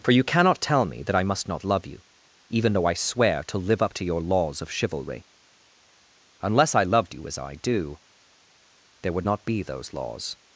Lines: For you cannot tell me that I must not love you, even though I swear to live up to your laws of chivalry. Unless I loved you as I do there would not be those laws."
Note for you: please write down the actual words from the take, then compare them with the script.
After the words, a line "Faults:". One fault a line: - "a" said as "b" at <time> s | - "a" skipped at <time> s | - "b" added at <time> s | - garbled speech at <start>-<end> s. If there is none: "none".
For you cannot tell me that I must not love you, even though I swear to live up to your laws of chivalry. Unless I loved you as I do there would not be those laws."
Faults:
none